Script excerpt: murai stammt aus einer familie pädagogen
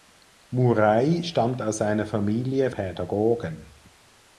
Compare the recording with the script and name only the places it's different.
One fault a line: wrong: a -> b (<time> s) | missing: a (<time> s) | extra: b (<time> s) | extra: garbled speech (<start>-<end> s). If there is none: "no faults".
no faults